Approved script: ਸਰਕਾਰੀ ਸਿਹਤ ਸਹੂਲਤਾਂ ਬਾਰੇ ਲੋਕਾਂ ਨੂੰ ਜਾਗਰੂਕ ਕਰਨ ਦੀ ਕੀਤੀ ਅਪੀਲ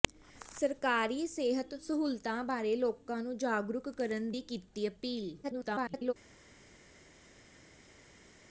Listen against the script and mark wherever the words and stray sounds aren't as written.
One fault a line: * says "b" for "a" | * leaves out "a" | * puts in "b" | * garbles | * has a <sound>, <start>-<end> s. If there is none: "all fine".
* garbles